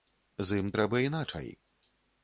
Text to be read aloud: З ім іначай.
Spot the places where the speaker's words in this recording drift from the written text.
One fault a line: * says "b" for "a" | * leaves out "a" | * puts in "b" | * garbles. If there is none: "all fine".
* puts in "трэба"